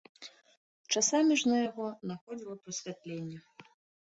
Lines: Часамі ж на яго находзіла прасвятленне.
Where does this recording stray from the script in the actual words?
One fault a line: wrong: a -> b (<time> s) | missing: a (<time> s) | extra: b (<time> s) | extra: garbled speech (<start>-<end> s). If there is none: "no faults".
no faults